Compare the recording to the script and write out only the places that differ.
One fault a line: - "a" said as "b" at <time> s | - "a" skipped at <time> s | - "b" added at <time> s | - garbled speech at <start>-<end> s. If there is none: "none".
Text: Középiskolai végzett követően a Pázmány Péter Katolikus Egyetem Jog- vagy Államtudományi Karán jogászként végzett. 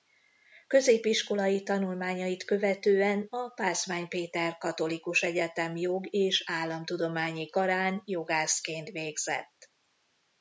- "végzett" said as "tanulmányait" at 1.6 s
- "vagy" said as "és" at 6.1 s